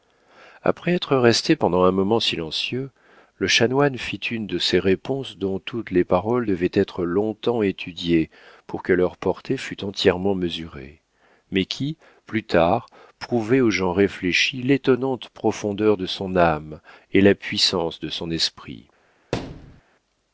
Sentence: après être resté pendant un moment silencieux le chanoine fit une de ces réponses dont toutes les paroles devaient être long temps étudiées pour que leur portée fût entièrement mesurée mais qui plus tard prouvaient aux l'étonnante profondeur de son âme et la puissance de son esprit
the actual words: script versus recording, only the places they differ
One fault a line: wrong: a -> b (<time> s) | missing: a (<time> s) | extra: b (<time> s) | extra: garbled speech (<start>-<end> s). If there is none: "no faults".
extra: gens réfléchis (13.7 s)